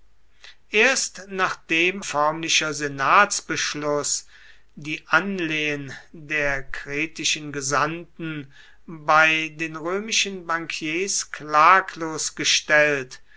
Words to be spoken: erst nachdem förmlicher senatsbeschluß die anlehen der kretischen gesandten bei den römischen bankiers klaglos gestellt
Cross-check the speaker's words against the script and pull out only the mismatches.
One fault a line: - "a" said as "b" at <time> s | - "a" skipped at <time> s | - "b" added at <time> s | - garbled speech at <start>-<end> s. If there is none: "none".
none